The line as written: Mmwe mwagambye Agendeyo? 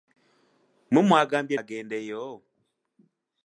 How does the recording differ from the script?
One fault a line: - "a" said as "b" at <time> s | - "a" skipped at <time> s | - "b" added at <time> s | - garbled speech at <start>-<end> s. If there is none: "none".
none